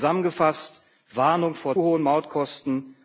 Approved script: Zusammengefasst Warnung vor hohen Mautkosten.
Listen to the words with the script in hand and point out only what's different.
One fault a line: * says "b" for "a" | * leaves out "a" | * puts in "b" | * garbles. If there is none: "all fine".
all fine